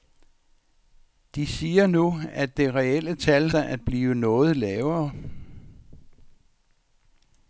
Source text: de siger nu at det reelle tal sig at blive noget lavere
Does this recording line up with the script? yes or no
yes